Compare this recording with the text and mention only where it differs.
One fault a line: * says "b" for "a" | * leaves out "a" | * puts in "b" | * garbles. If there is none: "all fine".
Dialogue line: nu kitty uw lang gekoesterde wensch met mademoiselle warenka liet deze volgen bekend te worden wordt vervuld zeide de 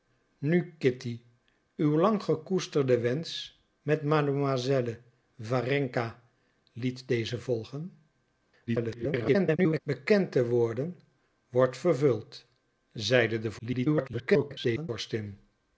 * garbles
* garbles